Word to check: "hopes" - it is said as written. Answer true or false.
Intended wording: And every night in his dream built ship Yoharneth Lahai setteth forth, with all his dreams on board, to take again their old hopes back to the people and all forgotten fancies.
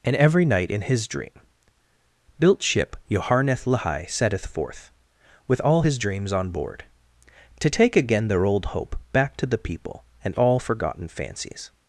false